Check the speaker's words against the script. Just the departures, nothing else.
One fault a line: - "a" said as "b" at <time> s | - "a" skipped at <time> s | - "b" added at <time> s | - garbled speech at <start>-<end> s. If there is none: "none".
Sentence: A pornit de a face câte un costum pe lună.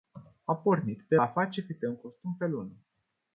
none